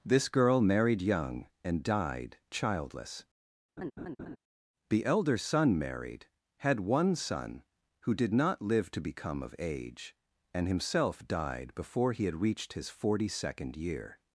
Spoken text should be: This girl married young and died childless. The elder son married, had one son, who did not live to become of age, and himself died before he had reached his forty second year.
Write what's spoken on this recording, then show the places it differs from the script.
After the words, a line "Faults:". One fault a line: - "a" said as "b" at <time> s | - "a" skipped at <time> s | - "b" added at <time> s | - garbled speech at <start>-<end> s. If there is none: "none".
This girl married young and died childless. The elder son married, had one son, who did not live to become of age, and himself died before he had reached his forty second year.
Faults:
none